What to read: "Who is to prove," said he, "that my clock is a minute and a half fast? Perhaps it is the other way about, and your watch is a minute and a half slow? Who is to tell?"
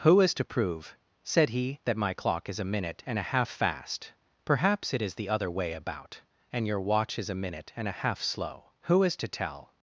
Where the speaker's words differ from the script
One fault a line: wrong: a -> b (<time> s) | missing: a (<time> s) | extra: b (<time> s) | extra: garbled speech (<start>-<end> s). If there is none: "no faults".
no faults